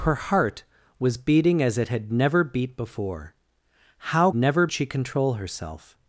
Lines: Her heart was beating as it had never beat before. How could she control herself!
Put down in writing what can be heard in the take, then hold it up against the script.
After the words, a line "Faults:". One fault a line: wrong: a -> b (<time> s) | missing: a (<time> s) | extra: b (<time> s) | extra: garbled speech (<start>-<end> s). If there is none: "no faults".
Her heart was beating as it had never beat before. How never she control herself!
Faults:
wrong: could -> never (4.3 s)